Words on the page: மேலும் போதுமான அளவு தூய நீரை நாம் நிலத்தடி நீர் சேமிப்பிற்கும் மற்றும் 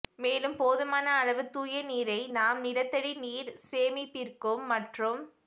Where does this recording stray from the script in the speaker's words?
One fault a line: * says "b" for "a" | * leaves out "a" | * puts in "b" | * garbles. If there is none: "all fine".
all fine